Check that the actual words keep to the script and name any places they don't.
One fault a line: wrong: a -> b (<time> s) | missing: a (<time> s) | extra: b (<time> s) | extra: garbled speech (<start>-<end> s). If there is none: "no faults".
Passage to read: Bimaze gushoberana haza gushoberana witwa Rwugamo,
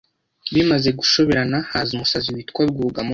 wrong: gushoberana -> umusazi (1.9 s)